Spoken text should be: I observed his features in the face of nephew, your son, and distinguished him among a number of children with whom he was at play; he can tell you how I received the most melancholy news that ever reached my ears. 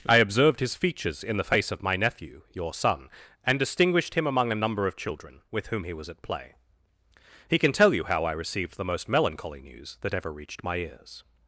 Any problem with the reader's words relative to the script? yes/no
yes